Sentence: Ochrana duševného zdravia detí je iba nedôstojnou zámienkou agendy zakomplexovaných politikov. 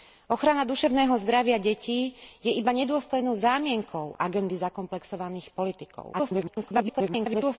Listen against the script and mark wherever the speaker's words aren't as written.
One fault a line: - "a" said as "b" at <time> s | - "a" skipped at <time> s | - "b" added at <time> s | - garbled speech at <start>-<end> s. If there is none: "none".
- garbled speech at 6.1-7.6 s